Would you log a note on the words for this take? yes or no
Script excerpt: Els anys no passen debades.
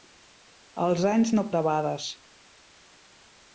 yes